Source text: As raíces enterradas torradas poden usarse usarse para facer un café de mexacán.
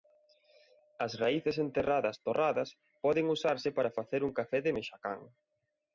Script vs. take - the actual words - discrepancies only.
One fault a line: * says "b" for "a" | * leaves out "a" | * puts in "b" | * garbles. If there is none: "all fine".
* leaves out "usarse"